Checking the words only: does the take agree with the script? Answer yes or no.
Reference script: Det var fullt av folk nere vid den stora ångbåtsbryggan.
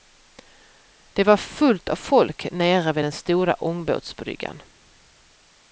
yes